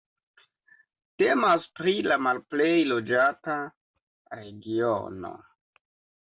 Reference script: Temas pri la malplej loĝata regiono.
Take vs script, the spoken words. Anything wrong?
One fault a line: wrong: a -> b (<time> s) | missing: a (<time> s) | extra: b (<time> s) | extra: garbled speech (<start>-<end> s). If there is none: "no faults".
no faults